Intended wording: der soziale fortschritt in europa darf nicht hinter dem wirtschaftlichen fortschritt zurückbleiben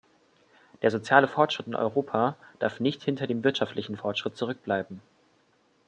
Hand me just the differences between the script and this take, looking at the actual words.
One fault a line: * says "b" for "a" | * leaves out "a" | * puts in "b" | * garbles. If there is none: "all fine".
all fine